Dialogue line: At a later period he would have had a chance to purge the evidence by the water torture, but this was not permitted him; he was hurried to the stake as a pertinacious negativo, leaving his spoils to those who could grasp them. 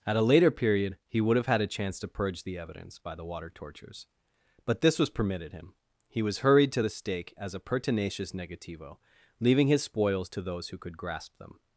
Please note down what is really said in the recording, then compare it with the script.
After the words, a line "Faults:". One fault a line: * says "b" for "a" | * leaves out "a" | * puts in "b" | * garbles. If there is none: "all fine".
At a later period he would have had a chance to purge the evidence by the water tortures, but this was permitted him; he was hurried to the stake as a pertinacious negativo, leaving his spoils to those who could grasp them.
Faults:
* says "tortures" for "torture"
* leaves out "not"